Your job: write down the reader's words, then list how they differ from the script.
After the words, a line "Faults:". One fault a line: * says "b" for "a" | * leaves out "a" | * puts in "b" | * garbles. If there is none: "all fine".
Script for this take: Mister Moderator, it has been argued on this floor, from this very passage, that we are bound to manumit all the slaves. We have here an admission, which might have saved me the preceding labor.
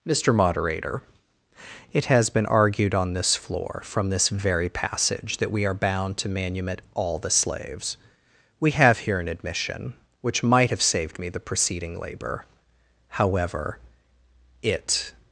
Mister Moderator, it has been argued on this floor, from this very passage, that we are bound to manumit all the slaves. We have here an admission, which might have saved me the preceding labor. However, it
Faults:
* puts in "However it"